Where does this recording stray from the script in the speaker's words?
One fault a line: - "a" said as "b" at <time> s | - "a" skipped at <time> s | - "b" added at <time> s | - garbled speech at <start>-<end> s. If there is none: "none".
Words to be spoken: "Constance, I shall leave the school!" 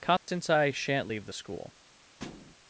- "shall" said as "shan't" at 0.7 s